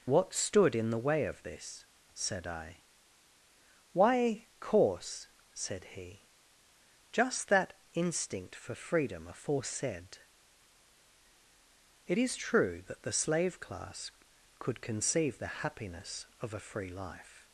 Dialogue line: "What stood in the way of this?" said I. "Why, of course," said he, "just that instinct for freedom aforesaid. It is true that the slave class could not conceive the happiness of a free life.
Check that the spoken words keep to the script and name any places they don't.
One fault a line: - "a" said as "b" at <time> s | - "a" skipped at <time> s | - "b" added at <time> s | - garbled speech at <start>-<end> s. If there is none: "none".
- "of" skipped at 4.5 s
- "not" skipped at 14.8 s